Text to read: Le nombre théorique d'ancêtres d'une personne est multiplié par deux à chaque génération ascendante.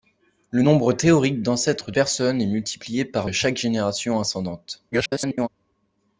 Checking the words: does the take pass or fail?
fail